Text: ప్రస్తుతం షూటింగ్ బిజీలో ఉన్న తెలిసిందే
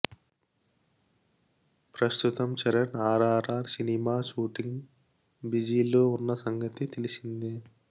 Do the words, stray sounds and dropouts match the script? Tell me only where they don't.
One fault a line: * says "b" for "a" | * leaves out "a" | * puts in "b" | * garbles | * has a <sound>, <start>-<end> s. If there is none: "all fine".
* puts in "చరణ్ ఆర్ఆర్ఆర్ సినిమా"
* puts in "సంగతి"